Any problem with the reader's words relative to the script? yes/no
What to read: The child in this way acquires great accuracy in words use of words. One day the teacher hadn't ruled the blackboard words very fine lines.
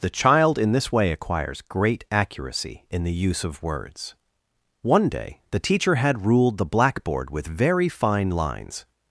yes